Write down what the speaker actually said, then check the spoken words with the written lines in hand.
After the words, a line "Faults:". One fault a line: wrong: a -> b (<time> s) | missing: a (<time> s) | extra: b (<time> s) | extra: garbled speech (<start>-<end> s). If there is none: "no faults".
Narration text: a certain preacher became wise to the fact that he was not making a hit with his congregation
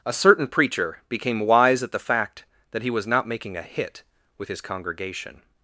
a certain preacher became wise at the fact that he was not making a hit with his congregation
Faults:
wrong: to -> at (1.8 s)